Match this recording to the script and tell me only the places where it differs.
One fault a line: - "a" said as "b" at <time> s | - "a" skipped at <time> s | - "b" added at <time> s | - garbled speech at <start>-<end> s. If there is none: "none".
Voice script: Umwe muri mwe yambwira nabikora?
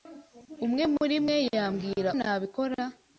none